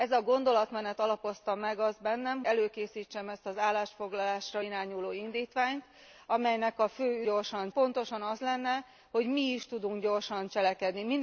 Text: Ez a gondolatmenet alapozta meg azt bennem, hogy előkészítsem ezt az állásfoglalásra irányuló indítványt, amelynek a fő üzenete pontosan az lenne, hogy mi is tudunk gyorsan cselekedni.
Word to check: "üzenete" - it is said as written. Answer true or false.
false